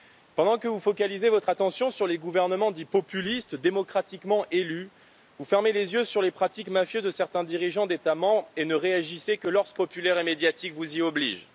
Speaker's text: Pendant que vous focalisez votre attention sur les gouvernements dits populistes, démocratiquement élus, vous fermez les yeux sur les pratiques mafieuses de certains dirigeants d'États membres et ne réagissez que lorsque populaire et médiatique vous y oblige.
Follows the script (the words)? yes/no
yes